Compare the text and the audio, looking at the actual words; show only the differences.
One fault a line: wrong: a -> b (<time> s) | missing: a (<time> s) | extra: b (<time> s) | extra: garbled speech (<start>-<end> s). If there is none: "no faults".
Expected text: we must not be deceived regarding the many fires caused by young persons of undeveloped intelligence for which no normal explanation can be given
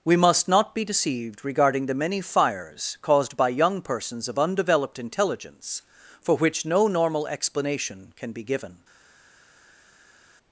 no faults